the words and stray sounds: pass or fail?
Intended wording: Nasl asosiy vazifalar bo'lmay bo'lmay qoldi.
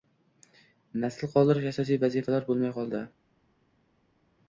fail